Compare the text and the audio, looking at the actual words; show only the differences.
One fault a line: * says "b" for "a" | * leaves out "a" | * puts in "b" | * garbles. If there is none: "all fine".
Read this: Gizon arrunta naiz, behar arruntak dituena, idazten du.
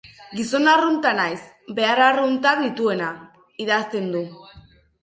all fine